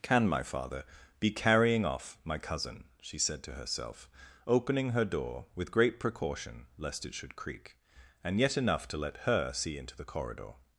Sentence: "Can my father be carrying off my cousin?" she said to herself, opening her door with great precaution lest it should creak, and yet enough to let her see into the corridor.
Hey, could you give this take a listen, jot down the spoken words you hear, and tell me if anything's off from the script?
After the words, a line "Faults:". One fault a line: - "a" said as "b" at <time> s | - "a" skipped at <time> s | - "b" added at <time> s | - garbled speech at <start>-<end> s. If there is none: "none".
"Can my father be carrying off my cousin?" she said to herself, opening her door with great precaution lest it should creak, and yet enough to let her see into the corridor.
Faults:
none